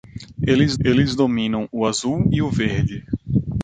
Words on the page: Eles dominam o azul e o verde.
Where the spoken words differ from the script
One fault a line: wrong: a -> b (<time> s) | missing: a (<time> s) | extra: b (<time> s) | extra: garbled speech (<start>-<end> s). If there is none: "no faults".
extra: eles (0.8 s)